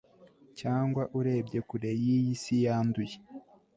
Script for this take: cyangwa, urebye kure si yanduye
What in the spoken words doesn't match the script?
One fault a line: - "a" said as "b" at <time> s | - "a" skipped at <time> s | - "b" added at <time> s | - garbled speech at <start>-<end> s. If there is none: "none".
- "y'iyi" added at 2.0 s